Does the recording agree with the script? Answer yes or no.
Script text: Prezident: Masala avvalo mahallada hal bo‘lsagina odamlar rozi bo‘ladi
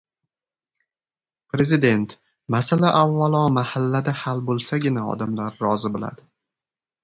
yes